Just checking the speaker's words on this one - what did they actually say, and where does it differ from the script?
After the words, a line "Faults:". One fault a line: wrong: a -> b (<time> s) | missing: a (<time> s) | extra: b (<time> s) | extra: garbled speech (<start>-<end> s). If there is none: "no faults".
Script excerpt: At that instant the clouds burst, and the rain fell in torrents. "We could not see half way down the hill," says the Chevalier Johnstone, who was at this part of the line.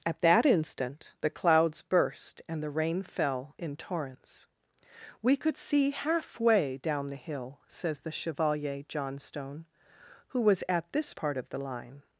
At that instant the clouds burst, and the rain fell in torrents. "We could see half way down the hill," says the Chevalier Johnstone, who was at this part of the line.
Faults:
missing: not (5.6 s)